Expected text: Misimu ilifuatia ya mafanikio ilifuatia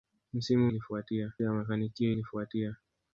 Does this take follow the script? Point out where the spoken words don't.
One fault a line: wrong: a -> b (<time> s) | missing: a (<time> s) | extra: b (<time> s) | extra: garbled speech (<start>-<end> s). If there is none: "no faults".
no faults